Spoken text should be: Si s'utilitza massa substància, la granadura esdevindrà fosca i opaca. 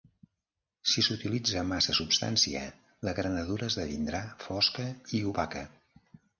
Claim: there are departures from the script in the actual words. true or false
false